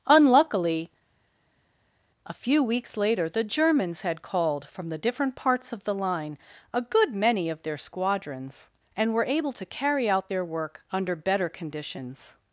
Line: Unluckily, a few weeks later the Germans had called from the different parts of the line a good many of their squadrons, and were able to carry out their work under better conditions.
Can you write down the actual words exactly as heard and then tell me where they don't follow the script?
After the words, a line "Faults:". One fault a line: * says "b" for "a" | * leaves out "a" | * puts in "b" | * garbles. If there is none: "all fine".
Unluckily, a few weeks later the Germans had called from the different parts of the line a good many of their squadrons, and were able to carry out their work under better conditions.
Faults:
all fine